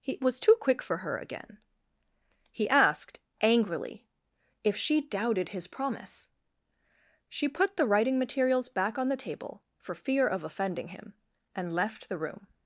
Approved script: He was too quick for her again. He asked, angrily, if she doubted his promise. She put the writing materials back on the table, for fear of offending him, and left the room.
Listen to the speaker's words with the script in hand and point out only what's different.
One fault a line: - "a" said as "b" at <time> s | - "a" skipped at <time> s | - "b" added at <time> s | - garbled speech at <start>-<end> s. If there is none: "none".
none